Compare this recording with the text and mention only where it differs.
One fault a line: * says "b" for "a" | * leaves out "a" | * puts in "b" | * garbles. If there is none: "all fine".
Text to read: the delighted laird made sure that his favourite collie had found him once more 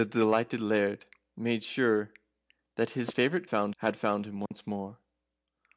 * says "found" for "collie"